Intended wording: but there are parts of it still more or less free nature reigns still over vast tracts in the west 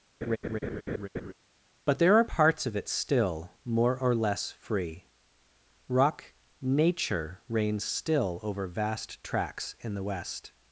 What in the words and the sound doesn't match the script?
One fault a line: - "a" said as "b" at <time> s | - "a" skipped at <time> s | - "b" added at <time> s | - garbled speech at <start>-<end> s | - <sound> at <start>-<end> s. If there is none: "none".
- laugh at 0.2-1.3 s
- "rock" added at 5.9 s